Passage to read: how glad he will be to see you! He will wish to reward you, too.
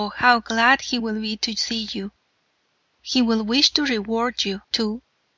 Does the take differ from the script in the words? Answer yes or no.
no